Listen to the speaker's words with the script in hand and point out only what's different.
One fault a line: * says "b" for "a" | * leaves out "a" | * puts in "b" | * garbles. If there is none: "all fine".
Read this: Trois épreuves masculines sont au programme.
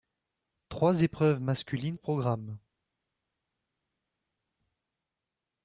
* leaves out "sont"